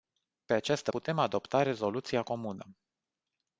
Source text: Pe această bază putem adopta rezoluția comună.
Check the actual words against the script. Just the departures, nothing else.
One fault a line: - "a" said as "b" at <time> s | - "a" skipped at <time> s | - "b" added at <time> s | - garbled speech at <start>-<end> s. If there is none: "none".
- "bază" skipped at 0.9 s